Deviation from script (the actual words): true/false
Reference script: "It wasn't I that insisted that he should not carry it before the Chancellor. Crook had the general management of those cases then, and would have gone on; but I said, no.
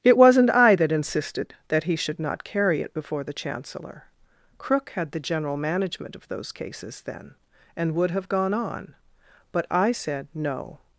false